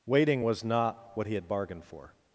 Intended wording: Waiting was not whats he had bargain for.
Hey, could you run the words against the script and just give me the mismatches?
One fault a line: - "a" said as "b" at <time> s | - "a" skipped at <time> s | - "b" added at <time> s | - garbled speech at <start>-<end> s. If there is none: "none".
- "whats" said as "what" at 1.2 s
- "bargain" said as "bargained" at 1.5 s